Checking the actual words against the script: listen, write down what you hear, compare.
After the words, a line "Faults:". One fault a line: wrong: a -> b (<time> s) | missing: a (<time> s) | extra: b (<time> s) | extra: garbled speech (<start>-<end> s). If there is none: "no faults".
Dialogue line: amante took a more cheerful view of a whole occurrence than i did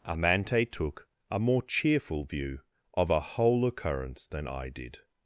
amante took a more cheerful view of a whole occurrence than i did
Faults:
no faults